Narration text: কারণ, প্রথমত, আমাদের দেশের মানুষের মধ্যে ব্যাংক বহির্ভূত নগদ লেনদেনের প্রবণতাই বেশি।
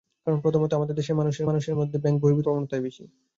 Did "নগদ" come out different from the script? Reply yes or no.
yes